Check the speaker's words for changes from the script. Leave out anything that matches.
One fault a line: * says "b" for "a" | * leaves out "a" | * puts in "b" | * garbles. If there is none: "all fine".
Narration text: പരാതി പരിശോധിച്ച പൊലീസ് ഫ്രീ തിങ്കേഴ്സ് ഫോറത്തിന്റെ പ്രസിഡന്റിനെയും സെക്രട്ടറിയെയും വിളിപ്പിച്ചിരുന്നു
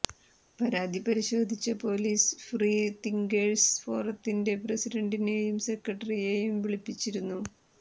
all fine